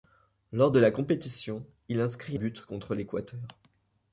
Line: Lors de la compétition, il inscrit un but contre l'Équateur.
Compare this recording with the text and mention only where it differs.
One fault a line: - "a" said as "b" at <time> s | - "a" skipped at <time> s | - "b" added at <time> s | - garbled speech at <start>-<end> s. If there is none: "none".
- "un" skipped at 2.4 s